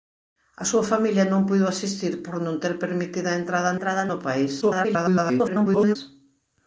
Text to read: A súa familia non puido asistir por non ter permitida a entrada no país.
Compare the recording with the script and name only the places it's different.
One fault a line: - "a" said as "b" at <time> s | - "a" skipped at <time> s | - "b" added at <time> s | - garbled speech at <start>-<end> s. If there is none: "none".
- "entrada" added at 3.7 s
- garbled speech at 4.6-6.0 s